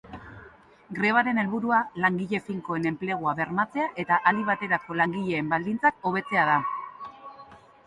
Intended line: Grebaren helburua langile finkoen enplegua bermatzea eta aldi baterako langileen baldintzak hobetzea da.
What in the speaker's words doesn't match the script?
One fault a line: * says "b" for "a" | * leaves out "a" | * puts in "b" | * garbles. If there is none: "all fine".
all fine